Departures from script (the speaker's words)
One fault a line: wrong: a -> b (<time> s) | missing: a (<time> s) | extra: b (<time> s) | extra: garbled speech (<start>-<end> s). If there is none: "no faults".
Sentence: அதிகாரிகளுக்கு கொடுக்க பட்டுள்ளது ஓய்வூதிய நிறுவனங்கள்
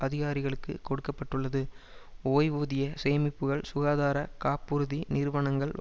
extra: சேமிப்புக்கள் சுகாதார காப்புறுதி (3.0 s)